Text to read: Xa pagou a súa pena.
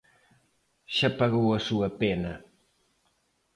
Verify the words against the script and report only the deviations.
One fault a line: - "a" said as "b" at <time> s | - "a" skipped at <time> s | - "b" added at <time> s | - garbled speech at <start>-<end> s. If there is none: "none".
none